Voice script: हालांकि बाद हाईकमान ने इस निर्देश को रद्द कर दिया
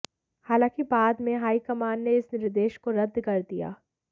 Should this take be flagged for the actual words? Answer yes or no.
yes